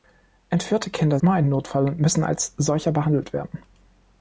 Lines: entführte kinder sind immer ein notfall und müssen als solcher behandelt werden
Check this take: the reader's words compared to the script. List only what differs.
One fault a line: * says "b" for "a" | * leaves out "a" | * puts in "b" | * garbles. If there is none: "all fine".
* leaves out "sind"